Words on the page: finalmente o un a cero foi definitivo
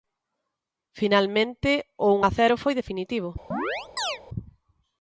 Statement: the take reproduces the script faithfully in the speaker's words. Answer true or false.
true